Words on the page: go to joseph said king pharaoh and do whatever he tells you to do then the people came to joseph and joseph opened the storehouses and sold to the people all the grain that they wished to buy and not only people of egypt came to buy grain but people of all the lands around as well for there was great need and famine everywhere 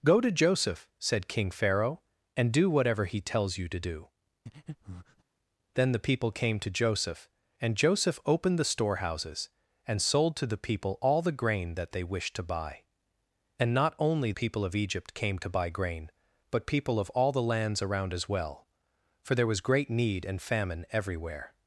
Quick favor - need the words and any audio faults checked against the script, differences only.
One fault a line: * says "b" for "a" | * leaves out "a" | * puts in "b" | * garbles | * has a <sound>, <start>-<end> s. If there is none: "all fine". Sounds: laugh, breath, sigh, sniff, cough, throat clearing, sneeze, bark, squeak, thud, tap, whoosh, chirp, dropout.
* has a breath, 4.5-5.2 s